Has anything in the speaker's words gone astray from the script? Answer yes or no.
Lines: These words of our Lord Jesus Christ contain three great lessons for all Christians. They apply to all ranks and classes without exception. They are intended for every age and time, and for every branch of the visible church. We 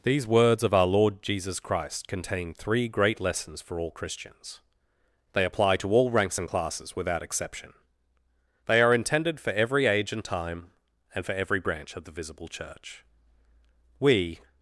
no